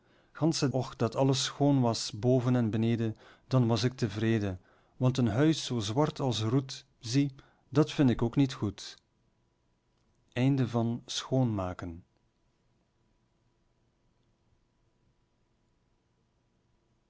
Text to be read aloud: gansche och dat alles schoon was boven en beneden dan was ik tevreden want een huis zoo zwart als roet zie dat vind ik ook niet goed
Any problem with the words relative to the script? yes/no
no